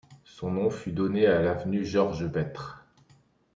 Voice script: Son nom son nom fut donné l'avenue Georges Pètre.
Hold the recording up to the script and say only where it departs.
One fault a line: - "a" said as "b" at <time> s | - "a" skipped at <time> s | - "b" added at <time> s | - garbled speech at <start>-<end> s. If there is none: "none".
- "son nom" skipped at 0.7 s
- "à" added at 1.3 s